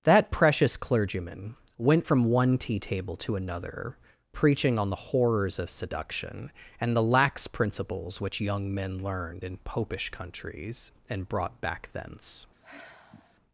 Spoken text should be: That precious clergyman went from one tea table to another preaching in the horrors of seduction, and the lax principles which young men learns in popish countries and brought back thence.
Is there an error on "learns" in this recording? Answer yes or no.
yes